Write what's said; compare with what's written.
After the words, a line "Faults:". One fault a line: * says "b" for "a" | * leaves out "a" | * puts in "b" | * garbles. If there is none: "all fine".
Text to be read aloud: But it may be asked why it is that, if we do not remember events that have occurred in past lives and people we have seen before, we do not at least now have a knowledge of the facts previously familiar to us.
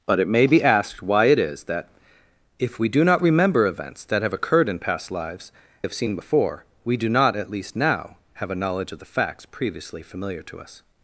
But it may be asked why it is that, if we do not remember events that have occurred in past lives have seen before, we do not at least now have a knowledge of the facts previously familiar to us.
Faults:
* leaves out "and people we"